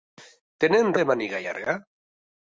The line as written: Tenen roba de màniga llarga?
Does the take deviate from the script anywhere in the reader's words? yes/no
yes